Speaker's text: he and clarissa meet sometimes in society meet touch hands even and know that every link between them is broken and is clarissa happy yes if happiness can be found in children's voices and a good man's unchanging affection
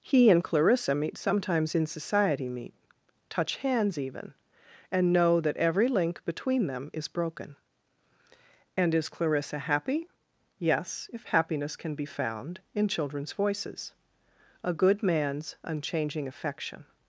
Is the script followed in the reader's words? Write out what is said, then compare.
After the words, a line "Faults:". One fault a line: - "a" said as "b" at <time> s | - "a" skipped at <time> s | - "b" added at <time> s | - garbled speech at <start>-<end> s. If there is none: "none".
he and clarissa meet sometimes in society meet touch hands even and know that every link between them is broken and is clarissa happy yes if happiness can be found in children's voices a good man's unchanging affection
Faults:
- "and" skipped at 13.9 s